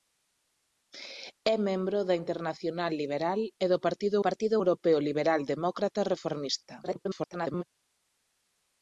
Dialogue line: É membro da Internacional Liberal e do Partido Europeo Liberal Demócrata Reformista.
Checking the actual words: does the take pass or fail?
fail